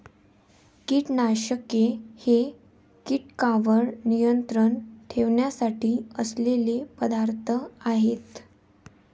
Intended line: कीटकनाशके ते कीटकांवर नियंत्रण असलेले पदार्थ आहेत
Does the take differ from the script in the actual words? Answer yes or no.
yes